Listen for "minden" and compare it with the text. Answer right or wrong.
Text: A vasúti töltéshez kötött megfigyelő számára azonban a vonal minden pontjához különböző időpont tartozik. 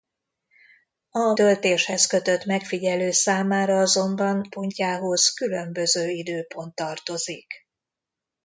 wrong